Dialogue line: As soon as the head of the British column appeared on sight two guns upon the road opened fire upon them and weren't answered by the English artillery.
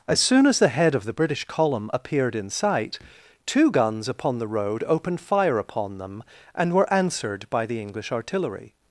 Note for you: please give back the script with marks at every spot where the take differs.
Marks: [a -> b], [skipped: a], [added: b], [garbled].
As soon as the head of the British column appeared [on -> in] sight two guns upon the road opened fire upon them and [weren't -> were] answered by the English artillery.